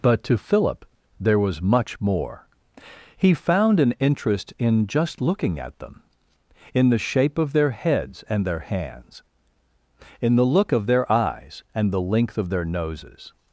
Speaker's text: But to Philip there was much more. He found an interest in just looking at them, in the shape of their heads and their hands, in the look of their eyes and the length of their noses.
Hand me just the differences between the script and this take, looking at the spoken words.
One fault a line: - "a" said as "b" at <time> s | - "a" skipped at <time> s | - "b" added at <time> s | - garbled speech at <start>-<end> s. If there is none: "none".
none